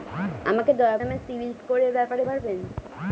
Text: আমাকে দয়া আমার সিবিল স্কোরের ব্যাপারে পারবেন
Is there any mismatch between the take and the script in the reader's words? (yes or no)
no